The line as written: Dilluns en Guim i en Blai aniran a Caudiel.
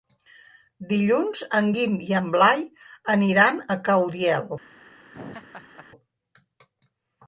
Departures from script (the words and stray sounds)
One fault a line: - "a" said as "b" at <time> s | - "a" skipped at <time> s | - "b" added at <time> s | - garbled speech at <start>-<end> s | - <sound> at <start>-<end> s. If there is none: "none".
- laugh at 5.1-5.9 s